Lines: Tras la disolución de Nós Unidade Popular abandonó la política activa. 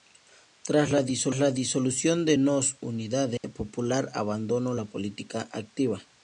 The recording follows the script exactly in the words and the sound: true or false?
false